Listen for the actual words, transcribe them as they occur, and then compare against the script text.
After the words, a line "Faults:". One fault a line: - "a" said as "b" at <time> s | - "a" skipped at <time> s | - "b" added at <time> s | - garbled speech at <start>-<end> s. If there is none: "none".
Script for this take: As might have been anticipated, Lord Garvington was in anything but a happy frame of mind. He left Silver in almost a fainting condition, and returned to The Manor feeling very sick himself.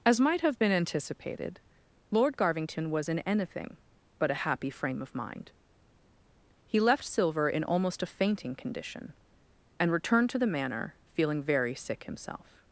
As might have been anticipated, Lord Garvington was in anything but a happy frame of mind. He left Silver in almost a fainting condition, and returned to The Manor feeling very sick himself.
Faults:
none